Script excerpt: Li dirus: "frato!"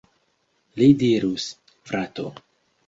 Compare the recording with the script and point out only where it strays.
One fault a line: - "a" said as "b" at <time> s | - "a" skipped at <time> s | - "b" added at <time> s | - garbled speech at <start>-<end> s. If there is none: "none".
none